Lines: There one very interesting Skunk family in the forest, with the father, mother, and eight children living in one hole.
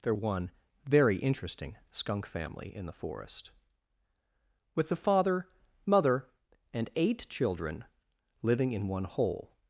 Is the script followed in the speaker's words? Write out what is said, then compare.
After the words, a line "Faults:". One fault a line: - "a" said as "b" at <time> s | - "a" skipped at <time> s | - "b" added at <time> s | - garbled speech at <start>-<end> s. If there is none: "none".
There one very interesting Skunk family in the forest, with the father, mother, and eight children living in one hole.
Faults:
none